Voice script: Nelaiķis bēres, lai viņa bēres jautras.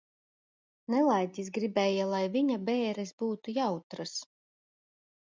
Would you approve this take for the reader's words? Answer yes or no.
no